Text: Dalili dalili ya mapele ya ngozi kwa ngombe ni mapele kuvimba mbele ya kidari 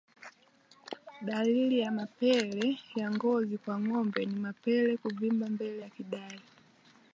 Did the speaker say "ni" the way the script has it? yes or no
yes